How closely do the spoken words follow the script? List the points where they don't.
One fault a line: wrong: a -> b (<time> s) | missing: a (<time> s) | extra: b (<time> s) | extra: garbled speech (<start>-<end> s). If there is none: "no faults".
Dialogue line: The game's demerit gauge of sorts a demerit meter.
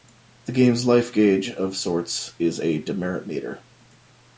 wrong: demerit -> life (0.9 s)
extra: is (2.4 s)